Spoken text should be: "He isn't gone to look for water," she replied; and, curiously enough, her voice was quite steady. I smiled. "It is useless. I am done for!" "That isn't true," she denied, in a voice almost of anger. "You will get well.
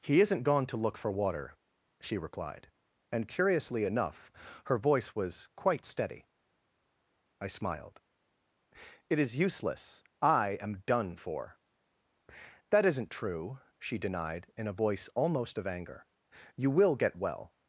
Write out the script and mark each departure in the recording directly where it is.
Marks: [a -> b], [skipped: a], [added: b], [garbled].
"He isn't gone to look for water," she replied; and, curiously enough, her voice was quite steady. I smiled. "It is useless. I am done for!" "That isn't true," she denied, in a voice almost of anger. "You will get well.